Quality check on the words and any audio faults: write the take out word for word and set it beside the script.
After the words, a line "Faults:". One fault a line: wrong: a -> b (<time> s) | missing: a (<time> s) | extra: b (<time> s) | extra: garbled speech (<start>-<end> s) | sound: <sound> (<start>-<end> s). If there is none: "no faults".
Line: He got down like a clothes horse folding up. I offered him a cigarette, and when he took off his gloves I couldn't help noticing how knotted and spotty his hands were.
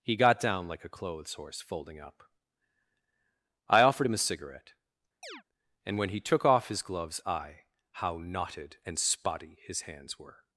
He got down like a clothes horse folding up. I offered him a cigarette, and when he took off his gloves I how knotted and spotty his hands were.
Faults:
sound: chirp (5.2-5.4 s)
missing: couldn't help noticing (7.6 s)